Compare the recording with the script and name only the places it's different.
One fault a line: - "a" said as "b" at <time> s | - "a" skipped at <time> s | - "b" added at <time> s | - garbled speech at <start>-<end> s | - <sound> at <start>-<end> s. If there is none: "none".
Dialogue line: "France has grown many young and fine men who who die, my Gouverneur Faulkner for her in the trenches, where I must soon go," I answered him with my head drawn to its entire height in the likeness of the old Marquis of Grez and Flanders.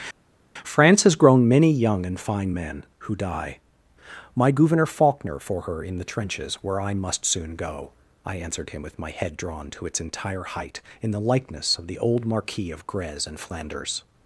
- "who" skipped at 3.2 s